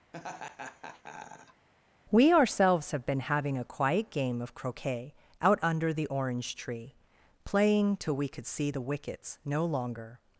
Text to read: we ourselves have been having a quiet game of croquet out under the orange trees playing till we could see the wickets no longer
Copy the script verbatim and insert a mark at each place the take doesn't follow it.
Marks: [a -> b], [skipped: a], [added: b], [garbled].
we ourselves have been having a quiet game of croquet out under the orange [trees -> tree] playing till we could see the wickets no longer